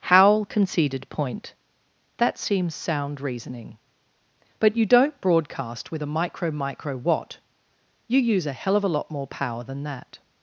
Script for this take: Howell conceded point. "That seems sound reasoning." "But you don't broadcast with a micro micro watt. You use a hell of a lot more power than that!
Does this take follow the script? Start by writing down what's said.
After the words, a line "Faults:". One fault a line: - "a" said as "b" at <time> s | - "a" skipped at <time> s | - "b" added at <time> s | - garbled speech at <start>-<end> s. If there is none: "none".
Howell conceded point. "That seems sound reasoning." "But you don't broadcast with a micro micro watt. You use a hell of a lot more power than that!
Faults:
none